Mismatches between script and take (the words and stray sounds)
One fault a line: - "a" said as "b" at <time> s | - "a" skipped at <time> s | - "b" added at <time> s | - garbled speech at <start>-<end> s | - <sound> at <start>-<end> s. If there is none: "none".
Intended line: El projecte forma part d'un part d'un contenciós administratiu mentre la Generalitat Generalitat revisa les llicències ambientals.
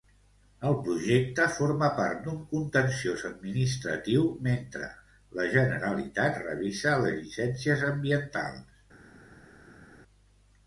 - "part d'un" skipped at 2.4 s
- "Generalitat" skipped at 6.4 s